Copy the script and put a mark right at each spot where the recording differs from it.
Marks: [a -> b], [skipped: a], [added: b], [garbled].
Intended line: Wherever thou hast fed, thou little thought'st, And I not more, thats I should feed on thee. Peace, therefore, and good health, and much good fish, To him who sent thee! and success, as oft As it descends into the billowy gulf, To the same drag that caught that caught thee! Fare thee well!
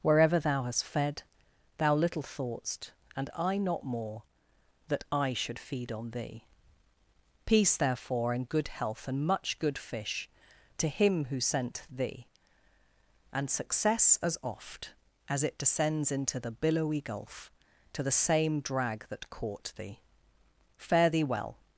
Wherever thou hast fed, thou little thought'st, And I not more, [thats -> that] I should feed on thee. Peace, therefore, and good health, and much good fish, To him who sent thee! and success, as oft As it descends into the billowy gulf, To the same drag that caught [skipped: that caught] thee! Fare thee well!